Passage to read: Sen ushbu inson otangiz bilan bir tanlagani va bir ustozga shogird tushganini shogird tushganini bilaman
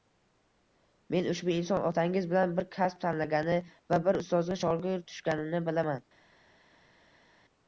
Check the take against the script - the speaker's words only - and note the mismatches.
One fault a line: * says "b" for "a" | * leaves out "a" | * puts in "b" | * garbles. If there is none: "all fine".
* says "Men" for "Sen"
* puts in "kasb"
* leaves out "shogird tushganini"